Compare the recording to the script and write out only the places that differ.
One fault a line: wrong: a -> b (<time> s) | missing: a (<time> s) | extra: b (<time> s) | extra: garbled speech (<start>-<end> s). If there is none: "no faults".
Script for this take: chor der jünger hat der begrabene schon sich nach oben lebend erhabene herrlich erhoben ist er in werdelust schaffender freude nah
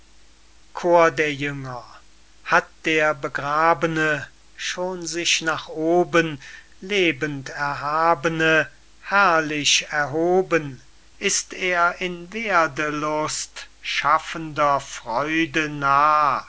no faults